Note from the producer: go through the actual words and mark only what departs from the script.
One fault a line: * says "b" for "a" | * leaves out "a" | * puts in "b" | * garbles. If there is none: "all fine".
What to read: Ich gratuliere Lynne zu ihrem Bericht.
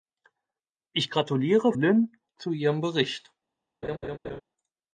all fine